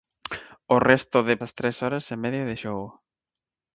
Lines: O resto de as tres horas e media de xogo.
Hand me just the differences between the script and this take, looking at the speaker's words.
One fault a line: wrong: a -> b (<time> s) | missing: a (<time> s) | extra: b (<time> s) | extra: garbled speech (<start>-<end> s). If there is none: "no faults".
no faults